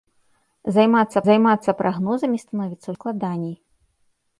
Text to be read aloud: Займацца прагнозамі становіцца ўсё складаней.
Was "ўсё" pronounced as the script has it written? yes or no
no